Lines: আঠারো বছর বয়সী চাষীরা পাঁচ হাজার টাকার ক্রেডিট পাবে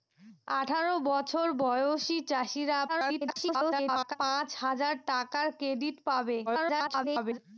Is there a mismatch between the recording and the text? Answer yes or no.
yes